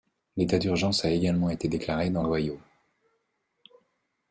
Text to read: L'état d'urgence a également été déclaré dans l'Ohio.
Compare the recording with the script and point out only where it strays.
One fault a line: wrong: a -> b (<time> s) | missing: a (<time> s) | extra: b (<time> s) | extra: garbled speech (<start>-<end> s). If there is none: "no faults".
no faults